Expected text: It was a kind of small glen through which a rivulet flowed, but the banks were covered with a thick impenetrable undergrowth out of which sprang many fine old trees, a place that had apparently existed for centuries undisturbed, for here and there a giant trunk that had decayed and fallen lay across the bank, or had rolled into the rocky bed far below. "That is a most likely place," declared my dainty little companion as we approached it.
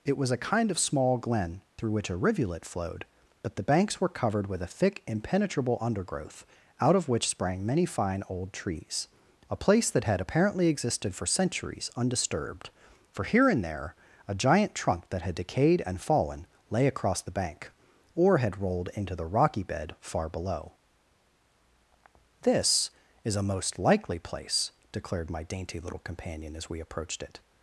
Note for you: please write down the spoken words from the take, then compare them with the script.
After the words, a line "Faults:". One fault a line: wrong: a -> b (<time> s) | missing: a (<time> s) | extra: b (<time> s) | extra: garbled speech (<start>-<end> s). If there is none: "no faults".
It was a kind of small glen through which a rivulet flowed, but the banks were covered with a thick impenetrable undergrowth out of which sprang many fine old trees, a place that had apparently existed for centuries undisturbed, for here and there a giant trunk that had decayed and fallen lay across the bank, or had rolled into the rocky bed far below. "This is a most likely place," declared my dainty little companion as we approached it.
Faults:
wrong: That -> This (22.4 s)